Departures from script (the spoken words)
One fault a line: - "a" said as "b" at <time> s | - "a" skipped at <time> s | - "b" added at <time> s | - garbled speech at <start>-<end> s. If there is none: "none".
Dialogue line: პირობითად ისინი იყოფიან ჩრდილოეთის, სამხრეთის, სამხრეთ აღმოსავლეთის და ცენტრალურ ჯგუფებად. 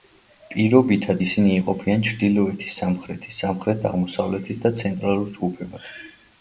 none